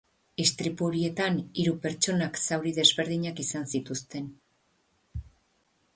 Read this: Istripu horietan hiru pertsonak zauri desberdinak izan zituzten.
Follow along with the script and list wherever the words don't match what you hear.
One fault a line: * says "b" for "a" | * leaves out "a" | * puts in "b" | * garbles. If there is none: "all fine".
all fine